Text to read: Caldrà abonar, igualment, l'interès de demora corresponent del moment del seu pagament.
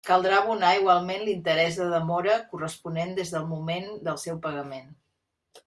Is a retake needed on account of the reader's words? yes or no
yes